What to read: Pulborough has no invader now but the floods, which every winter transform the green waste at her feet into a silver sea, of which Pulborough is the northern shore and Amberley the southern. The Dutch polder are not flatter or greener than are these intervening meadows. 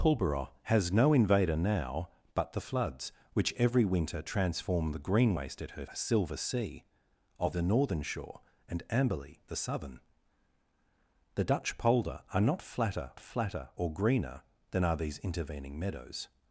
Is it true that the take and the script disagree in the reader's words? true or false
true